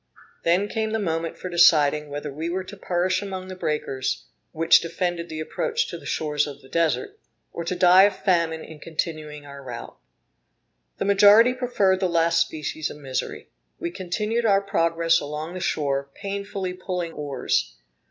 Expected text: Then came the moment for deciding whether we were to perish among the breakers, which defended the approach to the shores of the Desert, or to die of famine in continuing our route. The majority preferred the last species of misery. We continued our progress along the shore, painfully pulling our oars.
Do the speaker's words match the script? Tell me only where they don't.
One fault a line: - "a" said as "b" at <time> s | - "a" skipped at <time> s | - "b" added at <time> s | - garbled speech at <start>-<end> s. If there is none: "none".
- "our" skipped at 17.1 s